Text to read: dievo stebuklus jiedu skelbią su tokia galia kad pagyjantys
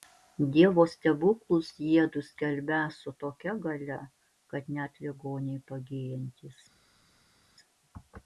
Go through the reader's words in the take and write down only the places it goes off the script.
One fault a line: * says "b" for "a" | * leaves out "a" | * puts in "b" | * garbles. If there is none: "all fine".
* puts in "net ligoniai"